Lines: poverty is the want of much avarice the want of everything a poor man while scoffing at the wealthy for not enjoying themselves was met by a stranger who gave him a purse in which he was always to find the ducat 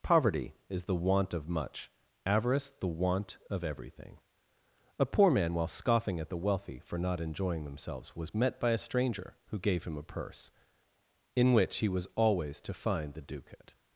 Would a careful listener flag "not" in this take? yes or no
no